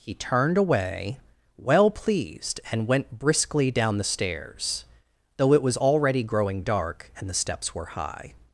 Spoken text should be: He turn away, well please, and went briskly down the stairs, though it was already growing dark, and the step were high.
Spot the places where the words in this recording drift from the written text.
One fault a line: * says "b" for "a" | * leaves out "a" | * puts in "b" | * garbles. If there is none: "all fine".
* says "turned" for "turn"
* says "pleased" for "please"
* says "steps" for "step"